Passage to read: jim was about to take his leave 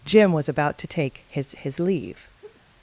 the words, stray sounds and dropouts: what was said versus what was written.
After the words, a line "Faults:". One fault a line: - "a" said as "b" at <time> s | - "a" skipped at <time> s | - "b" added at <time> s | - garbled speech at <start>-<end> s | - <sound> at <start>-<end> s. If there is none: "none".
jim was about to take his his leave
Faults:
- "his" added at 1.6 s
- laugh at 2.4-2.6 s